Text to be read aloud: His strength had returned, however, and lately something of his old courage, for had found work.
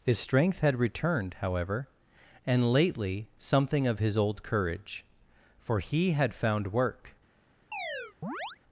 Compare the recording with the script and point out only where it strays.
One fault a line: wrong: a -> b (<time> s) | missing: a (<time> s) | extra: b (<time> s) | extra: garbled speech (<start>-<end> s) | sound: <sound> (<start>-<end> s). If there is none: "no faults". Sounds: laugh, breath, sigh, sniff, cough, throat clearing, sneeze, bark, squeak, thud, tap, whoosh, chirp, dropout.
extra: he (5.8 s)
sound: chirp (7.7-8.6 s)